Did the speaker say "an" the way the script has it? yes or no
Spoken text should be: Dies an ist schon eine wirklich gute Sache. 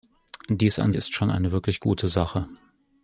yes